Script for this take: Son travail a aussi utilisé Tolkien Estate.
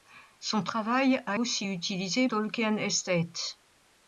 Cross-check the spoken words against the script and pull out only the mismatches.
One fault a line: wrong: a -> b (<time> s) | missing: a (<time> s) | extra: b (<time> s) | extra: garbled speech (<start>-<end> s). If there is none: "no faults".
no faults